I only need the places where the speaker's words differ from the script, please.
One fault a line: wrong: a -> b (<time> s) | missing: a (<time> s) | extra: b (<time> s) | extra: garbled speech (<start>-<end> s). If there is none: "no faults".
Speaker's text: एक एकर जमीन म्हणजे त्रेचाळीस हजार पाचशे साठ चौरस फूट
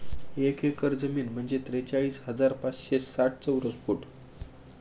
no faults